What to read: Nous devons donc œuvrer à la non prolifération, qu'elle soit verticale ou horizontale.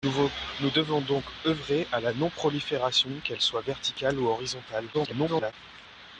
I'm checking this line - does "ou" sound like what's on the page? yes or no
yes